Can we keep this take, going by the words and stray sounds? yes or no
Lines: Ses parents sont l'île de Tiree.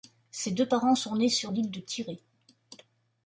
no